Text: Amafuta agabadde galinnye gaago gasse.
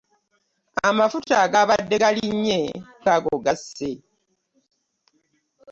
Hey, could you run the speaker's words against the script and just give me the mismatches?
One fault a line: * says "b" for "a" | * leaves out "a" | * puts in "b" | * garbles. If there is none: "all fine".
all fine